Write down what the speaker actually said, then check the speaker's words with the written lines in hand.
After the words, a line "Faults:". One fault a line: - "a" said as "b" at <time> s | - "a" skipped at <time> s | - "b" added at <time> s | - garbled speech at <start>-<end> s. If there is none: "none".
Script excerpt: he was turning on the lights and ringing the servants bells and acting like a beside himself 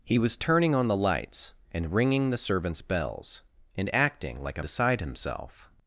he was turning on the lights and ringing the servants bells and acting like a beside himself
Faults:
none